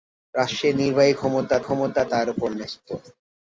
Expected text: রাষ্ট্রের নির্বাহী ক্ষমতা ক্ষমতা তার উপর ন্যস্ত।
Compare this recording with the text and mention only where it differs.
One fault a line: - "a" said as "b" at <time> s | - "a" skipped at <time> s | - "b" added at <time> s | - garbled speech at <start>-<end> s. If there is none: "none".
none